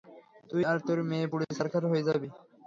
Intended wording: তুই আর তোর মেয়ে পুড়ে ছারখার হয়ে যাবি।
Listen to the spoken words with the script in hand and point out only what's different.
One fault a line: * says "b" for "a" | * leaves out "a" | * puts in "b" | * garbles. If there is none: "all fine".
all fine